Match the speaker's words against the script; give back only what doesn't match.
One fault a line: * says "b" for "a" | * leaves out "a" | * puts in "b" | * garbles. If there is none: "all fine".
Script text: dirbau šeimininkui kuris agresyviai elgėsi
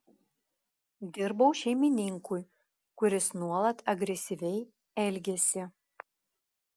* puts in "nuolat"